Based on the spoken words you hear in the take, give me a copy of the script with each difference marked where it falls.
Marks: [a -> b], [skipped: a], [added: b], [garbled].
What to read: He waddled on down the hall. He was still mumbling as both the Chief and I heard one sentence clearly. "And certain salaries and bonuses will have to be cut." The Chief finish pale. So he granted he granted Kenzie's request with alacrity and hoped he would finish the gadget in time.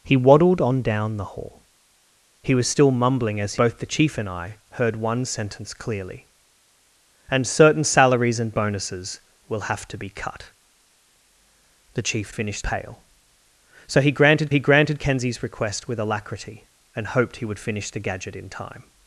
He waddled on down the hall. He was still mumbling as both the Chief and I heard one sentence clearly. "And certain salaries and bonuses will have to be cut." The Chief finish pale. So he granted he granted Kenzie's request with alacrity and hoped he would finish the gadget in time.